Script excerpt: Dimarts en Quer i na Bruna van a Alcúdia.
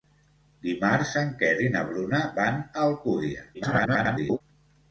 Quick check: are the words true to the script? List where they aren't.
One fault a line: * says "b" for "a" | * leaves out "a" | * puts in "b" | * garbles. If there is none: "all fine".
* garbles